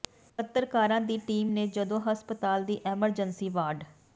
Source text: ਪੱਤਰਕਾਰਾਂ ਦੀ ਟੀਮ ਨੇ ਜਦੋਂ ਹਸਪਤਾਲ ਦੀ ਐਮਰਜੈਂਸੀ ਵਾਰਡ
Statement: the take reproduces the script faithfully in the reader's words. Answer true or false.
true